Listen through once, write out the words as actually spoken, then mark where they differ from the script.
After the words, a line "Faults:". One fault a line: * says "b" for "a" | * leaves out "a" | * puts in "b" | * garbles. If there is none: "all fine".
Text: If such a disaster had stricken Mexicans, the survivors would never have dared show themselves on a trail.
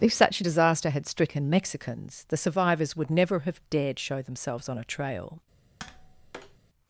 If such a disaster had stricken Mexicans, the survivors would never have dared show themselves on a trail.
Faults:
all fine